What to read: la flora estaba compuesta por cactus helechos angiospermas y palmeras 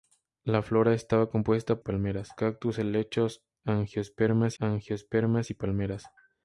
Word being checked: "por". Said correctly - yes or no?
no